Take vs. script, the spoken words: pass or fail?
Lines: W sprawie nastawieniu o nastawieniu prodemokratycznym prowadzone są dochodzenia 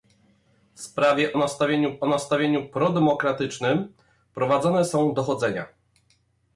pass